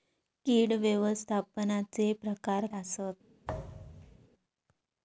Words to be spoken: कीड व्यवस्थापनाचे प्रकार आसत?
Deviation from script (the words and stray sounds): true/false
true